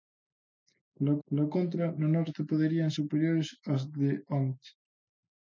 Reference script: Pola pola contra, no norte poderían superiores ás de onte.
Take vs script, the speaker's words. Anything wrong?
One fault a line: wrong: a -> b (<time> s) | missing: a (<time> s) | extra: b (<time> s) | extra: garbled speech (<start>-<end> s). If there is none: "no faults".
no faults